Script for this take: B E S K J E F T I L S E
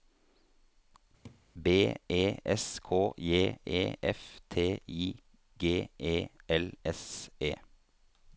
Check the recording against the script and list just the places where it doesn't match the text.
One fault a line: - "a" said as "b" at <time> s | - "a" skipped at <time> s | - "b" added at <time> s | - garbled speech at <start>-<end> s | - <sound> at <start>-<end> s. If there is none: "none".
- laugh at 1.2-1.4 s
- "G E" added at 5.6 s